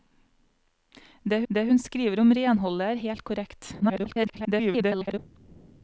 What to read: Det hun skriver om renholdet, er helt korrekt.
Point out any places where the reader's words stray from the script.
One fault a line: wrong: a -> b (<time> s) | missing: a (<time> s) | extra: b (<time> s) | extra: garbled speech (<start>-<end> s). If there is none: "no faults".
extra: det (1.5 s)
extra: garbled speech (3.8-5.2 s)